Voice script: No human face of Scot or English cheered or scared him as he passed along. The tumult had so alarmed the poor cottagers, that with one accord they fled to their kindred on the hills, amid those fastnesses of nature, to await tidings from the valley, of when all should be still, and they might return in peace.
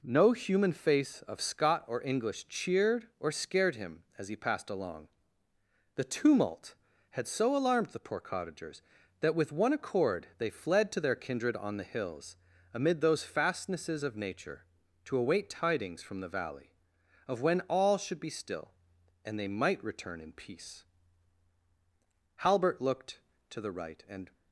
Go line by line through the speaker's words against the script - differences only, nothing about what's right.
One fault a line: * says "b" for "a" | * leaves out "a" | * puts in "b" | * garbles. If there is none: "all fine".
* puts in "Halbert looked to the right and"